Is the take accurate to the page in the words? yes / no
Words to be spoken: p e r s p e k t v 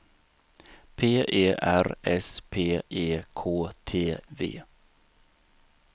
yes